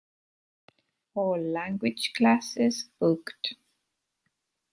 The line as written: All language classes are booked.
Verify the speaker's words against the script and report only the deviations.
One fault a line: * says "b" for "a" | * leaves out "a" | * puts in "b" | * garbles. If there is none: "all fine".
* leaves out "are"